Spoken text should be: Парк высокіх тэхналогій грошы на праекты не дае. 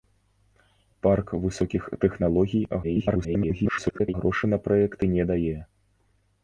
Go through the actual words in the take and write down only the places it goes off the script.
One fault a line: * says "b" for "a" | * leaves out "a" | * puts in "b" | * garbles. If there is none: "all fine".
* garbles